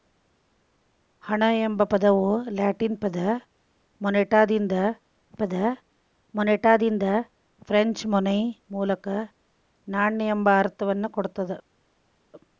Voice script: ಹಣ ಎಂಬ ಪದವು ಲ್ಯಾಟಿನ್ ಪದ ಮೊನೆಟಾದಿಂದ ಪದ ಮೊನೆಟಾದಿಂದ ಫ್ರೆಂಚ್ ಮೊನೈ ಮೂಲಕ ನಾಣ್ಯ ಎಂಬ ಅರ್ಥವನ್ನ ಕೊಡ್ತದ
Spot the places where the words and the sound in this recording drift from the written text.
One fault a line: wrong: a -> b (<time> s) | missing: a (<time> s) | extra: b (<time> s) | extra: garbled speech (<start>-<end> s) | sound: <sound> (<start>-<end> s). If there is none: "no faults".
no faults